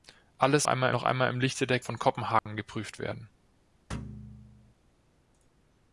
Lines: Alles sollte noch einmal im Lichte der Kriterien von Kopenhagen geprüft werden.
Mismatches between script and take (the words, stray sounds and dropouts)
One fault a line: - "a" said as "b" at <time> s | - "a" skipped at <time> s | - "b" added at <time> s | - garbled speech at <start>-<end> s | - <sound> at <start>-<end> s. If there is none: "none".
- "sollte" said as "einmal" at 0.6 s
- "Kriterien" skipped at 1.8 s
- dropout at 2.4-2.5 s
- thud at 3.9-4.7 s